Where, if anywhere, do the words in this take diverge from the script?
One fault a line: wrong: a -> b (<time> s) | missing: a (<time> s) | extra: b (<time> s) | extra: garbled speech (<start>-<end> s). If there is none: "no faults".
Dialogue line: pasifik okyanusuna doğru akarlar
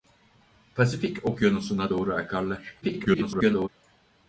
extra: garbled speech (2.8-3.7 s)